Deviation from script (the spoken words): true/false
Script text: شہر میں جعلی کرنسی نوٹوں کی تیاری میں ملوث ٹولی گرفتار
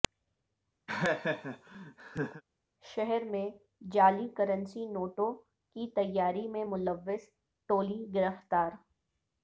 false